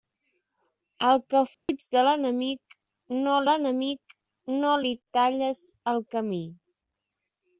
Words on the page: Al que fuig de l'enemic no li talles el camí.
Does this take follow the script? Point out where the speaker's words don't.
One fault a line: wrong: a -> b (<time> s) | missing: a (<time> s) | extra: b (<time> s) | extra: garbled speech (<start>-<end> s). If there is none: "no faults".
extra: l'enemic no (3.5 s)